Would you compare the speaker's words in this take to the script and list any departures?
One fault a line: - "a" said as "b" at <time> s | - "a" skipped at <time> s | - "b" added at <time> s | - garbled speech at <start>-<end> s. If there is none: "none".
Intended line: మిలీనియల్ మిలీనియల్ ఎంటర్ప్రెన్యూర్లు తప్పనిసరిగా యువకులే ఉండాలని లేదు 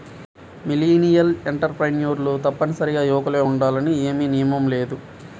- "మిలీనియల్" skipped at 1.3 s
- "ఏమీ నియమం" added at 4.0 s